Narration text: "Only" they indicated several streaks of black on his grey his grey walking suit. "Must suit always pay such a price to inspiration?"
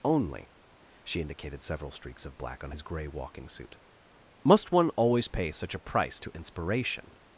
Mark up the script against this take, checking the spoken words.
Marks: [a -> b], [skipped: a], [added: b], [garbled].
"Only" [they -> she] indicated several streaks of black on his grey [skipped: his grey] walking suit. "Must [suit -> one] always pay such a price to inspiration?"